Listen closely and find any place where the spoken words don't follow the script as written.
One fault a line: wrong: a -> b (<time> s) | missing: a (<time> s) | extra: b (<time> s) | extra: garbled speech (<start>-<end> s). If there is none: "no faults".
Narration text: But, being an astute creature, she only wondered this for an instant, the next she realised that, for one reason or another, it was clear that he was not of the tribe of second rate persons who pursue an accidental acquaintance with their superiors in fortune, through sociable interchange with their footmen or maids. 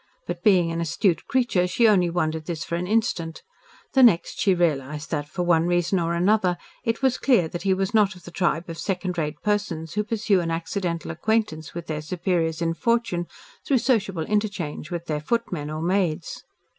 no faults